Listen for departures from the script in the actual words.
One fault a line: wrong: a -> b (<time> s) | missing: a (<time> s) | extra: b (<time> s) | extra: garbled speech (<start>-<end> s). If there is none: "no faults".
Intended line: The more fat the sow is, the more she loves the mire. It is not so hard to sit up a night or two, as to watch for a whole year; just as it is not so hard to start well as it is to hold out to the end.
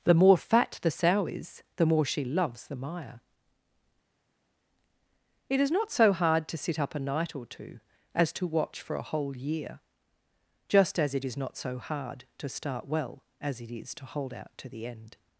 no faults